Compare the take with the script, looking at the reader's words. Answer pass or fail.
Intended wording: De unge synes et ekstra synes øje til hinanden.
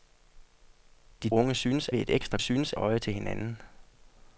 pass